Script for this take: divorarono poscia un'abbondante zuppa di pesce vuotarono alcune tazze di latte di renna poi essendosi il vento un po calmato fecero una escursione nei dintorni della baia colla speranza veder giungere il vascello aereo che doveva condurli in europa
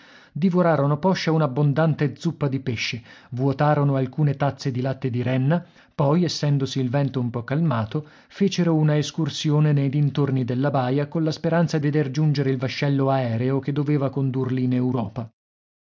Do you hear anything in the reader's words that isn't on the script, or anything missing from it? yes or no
no